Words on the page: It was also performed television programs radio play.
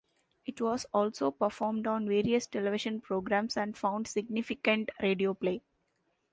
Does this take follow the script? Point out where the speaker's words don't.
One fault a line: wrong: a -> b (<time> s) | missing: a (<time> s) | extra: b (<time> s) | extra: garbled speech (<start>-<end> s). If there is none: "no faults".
extra: on various (1.9 s)
extra: and found significant (3.5 s)